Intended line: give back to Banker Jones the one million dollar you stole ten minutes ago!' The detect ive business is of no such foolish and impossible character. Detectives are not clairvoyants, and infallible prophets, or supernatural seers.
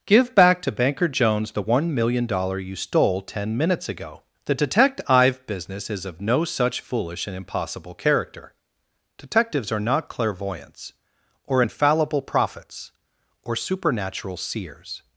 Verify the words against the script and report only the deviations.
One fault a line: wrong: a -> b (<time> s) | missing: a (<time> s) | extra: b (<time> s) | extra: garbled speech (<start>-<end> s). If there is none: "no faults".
wrong: and -> or (11.4 s)